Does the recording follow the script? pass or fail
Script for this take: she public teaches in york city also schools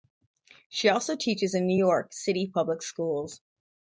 fail